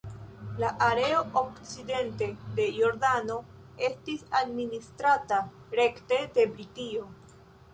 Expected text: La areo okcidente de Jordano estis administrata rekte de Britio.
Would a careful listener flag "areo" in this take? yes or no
no